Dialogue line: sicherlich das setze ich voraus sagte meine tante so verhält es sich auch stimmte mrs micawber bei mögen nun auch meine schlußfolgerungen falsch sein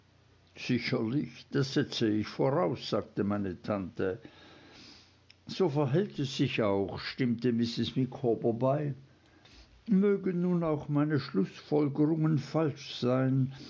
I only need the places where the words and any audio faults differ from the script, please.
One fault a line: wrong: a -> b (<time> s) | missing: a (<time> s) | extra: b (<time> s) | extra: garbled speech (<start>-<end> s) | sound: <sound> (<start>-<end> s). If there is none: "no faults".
no faults